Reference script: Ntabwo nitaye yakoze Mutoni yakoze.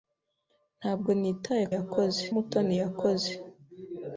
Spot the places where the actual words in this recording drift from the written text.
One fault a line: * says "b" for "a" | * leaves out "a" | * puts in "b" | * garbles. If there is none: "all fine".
all fine